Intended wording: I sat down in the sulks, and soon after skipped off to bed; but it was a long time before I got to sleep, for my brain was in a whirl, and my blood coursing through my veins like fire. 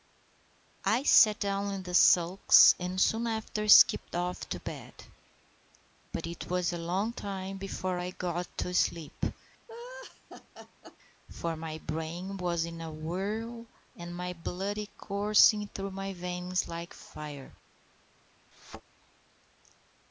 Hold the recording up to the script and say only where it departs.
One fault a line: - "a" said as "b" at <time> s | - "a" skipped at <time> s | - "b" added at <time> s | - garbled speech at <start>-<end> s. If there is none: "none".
none